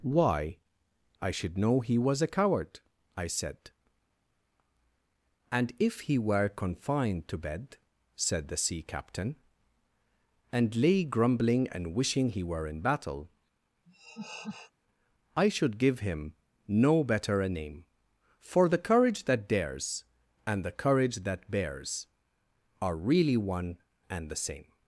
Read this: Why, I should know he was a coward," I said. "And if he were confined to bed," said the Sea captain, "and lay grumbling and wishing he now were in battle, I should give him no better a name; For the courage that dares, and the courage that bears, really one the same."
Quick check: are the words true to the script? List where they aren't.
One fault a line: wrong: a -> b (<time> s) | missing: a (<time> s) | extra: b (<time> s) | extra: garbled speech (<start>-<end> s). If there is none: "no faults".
missing: now (12.4 s)
extra: are (22.8 s)
extra: and (24.1 s)